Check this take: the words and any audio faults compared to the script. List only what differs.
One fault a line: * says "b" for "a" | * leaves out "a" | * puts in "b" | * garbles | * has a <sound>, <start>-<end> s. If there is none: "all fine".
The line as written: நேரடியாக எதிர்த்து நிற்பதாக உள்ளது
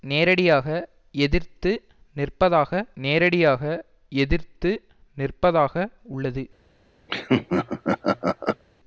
* puts in "நேரடியாக எதிர்த்து நிற்பதாக"
* has a laugh, 7.1-8.6 s